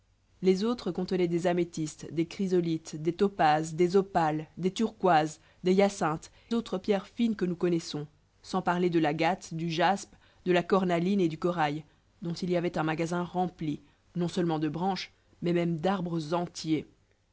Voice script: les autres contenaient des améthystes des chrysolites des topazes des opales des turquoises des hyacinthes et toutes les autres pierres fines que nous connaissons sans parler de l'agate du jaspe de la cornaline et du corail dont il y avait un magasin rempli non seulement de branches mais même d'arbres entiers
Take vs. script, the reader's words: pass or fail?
fail